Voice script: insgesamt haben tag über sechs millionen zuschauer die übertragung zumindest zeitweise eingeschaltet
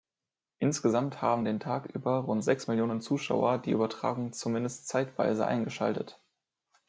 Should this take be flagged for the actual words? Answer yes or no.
yes